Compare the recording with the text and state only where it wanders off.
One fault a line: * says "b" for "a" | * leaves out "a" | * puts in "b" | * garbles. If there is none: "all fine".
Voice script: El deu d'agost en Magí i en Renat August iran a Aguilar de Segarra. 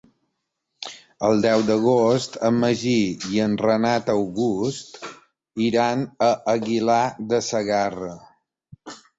all fine